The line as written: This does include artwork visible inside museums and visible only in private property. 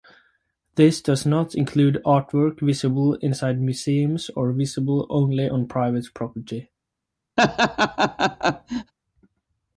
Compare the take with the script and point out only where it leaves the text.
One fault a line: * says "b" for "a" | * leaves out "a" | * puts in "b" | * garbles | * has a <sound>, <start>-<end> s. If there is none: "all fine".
* puts in "not"
* says "or" for "and"
* says "on" for "in"
* has a laugh, 7.4-8.9 s